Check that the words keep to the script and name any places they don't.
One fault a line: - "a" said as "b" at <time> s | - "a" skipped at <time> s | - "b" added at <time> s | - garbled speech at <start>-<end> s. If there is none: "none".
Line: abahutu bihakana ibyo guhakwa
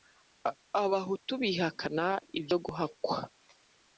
none